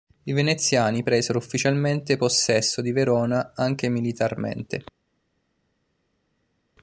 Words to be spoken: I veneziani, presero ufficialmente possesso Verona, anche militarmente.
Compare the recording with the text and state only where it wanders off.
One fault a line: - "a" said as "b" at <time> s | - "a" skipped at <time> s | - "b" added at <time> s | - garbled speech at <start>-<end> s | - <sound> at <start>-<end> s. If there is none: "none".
- "di" added at 2.8 s